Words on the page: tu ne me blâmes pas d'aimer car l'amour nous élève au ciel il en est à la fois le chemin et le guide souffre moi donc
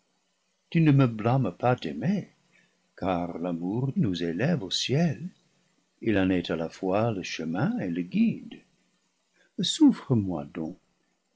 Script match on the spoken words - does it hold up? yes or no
yes